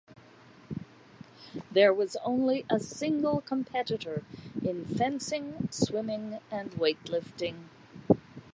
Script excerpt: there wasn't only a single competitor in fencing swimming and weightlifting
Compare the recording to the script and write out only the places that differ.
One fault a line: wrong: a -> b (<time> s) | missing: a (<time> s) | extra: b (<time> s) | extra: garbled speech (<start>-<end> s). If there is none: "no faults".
wrong: wasn't -> was (1.9 s)